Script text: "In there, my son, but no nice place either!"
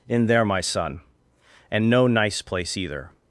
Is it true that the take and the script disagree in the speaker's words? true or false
true